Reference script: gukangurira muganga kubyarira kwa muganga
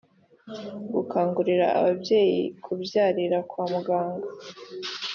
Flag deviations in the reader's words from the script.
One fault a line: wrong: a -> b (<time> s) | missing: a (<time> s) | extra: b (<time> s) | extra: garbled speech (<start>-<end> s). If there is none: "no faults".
wrong: muganga -> ababyeyi (1.8 s)